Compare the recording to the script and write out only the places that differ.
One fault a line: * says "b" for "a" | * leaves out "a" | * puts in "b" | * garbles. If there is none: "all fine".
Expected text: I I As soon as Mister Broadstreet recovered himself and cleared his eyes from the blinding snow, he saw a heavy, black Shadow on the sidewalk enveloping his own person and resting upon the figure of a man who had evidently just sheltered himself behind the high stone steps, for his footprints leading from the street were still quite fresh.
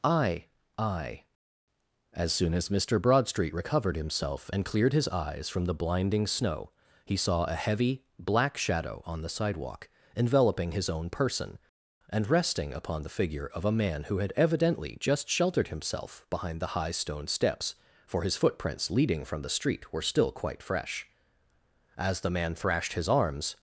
* puts in "As the man thrashed his arms"